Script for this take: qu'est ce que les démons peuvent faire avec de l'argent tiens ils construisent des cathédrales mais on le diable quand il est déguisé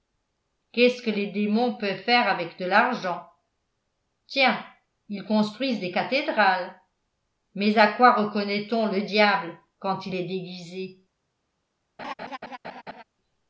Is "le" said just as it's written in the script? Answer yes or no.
yes